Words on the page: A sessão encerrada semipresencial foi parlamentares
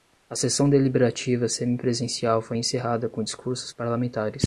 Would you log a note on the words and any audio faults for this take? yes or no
yes